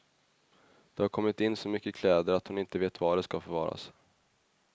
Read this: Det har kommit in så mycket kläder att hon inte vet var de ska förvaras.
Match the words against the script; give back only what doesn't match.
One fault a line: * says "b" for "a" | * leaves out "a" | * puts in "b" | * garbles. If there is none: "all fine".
all fine